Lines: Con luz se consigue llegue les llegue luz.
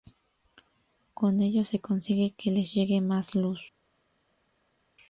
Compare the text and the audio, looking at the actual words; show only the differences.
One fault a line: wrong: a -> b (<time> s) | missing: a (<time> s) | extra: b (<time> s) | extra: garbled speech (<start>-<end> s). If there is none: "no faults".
wrong: luz -> ello (1.4 s)
wrong: llegue -> que (2.4 s)
extra: más (3.0 s)